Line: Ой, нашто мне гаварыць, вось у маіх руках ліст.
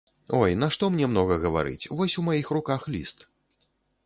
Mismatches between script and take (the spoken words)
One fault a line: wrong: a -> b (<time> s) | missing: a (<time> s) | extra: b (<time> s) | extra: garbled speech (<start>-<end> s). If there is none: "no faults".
extra: многа (1.1 s)